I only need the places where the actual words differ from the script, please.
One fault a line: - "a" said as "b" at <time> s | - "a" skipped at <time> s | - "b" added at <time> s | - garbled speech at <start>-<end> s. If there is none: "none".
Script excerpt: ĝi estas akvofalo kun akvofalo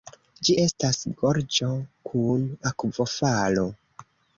- "akvofalo" said as "gorĝo" at 1.2 s